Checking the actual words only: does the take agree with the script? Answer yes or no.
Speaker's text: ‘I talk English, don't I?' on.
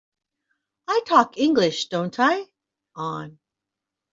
yes